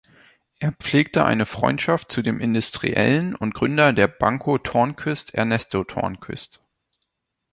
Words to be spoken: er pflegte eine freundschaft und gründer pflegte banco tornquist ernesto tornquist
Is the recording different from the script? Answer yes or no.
yes